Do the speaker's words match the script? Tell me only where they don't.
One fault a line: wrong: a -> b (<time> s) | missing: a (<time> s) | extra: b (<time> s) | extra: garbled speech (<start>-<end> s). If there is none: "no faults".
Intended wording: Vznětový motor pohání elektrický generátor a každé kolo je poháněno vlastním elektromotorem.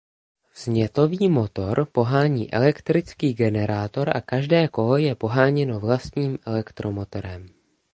no faults